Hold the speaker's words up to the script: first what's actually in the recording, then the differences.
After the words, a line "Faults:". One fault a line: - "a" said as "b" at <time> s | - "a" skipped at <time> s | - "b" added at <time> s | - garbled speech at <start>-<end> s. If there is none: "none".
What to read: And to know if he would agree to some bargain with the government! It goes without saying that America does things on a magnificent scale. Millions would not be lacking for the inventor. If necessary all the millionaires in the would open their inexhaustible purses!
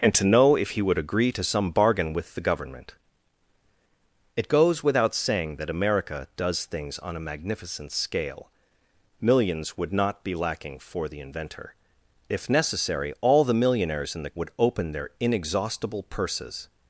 And to know if he would agree to some bargain with the government! It goes without saying that America does things on a magnificent scale. Millions would not be lacking for the inventor. If necessary all the millionaires in the would open their inexhaustible purses!
Faults:
none